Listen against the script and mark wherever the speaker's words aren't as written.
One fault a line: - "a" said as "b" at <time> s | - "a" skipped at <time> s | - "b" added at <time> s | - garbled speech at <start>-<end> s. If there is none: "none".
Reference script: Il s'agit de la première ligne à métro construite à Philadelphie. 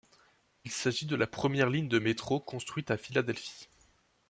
- "à" said as "de" at 1.9 s